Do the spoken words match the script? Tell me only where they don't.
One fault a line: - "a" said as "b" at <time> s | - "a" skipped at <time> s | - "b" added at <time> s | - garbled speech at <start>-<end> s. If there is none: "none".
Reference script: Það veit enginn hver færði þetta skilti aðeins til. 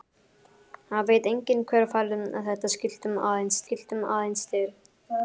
- "skilti aðeins" added at 3.6 s